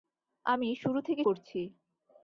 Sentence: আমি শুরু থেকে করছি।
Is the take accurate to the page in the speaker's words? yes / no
yes